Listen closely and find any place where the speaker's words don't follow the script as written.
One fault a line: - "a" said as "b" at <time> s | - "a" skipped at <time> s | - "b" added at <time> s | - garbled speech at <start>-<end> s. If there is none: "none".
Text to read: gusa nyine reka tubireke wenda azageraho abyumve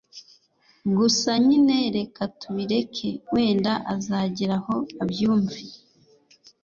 none